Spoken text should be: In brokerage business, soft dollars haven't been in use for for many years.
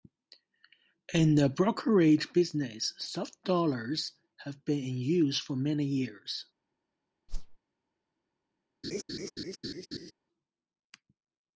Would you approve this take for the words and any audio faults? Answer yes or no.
no